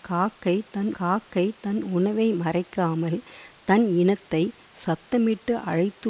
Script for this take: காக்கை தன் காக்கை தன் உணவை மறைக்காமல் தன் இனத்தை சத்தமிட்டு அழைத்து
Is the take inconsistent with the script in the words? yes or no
no